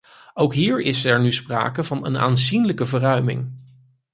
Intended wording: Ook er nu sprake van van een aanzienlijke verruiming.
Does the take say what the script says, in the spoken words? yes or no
no